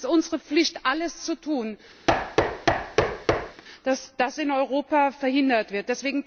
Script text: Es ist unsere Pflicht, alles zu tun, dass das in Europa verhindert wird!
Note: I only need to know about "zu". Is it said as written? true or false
true